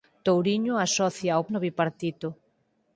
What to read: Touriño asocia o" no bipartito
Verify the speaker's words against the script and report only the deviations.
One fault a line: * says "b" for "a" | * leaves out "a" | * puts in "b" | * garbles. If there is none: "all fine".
all fine